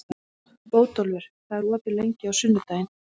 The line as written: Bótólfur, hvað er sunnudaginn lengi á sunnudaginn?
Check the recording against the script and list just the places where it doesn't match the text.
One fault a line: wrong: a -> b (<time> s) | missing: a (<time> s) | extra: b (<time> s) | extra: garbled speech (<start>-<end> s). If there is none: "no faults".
wrong: sunnudaginn -> opið (1.8 s)